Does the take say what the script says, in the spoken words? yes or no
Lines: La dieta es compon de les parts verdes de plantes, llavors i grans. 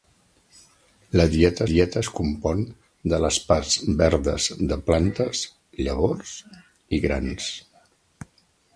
no